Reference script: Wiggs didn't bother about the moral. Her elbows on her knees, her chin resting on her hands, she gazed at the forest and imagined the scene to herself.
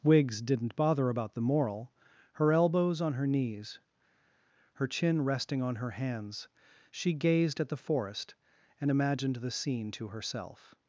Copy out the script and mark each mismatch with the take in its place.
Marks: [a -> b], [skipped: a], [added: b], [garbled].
Wiggs didn't bother about the moral. Her elbows on her knees, her chin resting on her hands, she gazed at the forest and imagined the scene to herself.